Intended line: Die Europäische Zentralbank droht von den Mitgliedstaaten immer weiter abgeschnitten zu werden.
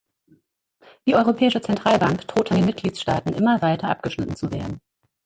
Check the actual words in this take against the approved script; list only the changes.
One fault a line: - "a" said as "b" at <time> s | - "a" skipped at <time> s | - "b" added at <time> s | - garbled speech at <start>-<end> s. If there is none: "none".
none